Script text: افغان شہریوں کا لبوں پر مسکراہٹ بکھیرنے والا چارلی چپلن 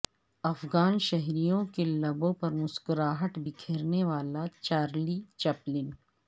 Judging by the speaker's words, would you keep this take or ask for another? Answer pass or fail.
fail